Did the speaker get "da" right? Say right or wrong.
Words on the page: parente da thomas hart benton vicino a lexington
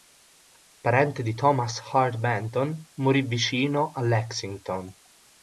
wrong